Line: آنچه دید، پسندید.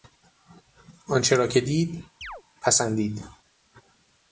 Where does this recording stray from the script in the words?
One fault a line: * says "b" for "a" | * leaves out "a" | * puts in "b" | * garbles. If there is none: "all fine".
* puts in "را که"